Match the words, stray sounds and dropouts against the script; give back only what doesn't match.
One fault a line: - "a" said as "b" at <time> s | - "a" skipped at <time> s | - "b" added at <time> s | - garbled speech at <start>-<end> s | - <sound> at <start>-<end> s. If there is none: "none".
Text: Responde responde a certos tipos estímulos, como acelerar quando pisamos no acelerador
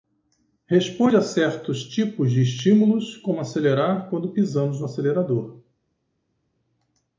- "responde" skipped at 1.1 s
- "de" added at 2.3 s